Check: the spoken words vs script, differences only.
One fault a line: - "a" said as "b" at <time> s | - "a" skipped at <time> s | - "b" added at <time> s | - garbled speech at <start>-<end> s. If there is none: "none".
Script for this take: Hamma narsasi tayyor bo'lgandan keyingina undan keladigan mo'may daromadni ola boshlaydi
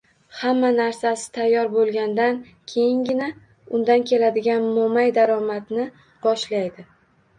- "ola" skipped at 5.9 s